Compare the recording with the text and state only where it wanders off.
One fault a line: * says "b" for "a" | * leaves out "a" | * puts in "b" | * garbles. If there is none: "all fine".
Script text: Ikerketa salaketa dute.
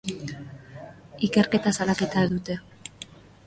all fine